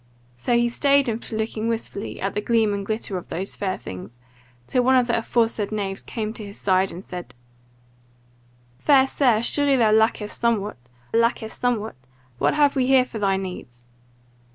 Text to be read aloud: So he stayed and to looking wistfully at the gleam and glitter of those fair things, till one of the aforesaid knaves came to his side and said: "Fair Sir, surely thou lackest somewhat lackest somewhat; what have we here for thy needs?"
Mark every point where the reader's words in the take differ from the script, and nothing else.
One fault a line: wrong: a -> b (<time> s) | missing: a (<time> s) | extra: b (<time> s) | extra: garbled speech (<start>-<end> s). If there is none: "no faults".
no faults